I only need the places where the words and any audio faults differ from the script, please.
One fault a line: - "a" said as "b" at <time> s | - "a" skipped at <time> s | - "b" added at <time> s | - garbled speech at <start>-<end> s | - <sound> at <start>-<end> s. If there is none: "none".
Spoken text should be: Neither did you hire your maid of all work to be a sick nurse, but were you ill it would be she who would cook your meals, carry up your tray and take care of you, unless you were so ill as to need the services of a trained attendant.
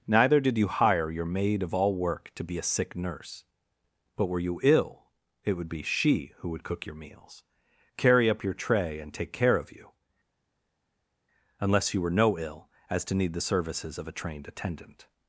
- "so" said as "no" at 12.1 s